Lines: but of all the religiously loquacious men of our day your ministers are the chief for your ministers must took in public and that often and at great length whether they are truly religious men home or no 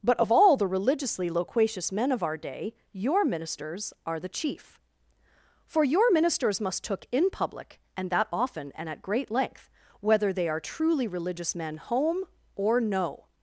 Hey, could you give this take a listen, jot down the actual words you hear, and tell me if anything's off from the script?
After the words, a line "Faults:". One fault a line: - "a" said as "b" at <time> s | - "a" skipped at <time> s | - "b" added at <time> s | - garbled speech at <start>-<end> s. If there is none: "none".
but of all the religiously loquacious men of our day your ministers are the chief for your ministers must took in public and that often and at great length whether they are truly religious men home or no
Faults:
none